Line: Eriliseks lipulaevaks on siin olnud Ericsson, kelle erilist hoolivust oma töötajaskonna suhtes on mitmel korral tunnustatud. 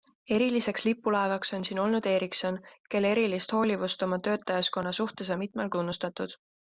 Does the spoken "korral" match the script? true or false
false